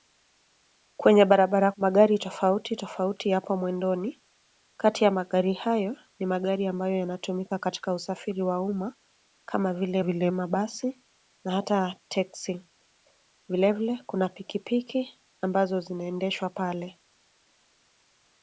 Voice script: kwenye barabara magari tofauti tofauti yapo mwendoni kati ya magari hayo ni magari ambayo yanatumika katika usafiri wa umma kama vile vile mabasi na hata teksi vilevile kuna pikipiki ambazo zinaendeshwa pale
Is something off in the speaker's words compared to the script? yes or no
no